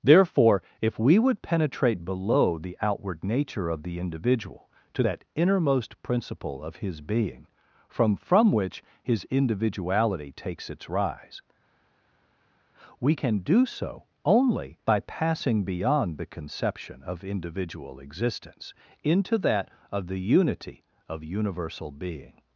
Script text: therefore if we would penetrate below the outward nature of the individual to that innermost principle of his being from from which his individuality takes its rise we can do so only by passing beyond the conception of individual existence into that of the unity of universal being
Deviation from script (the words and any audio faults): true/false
false